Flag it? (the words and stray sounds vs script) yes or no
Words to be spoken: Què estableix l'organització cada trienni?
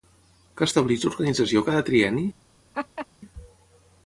yes